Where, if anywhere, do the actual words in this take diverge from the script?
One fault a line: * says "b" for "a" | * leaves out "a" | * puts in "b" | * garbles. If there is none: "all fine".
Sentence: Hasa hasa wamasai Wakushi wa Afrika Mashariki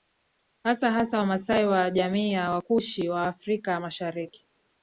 * puts in "wa jamii ya"